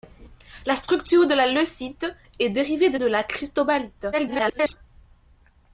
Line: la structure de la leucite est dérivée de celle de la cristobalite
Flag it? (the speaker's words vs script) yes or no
yes